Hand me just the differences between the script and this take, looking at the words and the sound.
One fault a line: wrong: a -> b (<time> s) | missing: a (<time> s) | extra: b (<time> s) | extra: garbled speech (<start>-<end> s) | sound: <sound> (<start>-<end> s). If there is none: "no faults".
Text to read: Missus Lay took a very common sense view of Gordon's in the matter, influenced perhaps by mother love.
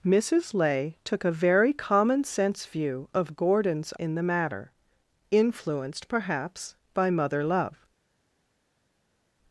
no faults